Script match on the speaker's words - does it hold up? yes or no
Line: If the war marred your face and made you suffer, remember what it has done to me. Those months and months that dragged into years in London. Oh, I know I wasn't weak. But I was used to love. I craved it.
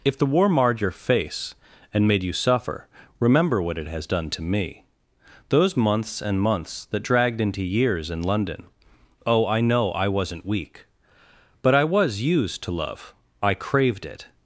yes